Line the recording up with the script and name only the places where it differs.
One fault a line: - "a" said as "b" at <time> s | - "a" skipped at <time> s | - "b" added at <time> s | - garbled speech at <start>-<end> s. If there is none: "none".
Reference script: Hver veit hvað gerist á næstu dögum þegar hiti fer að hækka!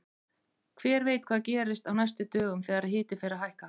none